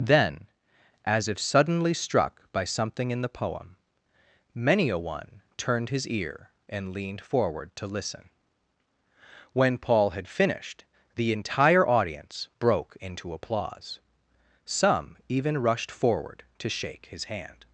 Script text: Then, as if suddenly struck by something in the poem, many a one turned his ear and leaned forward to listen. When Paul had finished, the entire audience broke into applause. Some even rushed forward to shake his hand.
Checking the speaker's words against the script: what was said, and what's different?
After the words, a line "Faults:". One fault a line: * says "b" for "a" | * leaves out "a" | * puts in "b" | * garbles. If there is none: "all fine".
Then, as if suddenly struck by something in the poem, many a one turned his ear and leaned forward to listen. When Paul had finished, the entire audience broke into applause. Some even rushed forward to shake his hand.
Faults:
all fine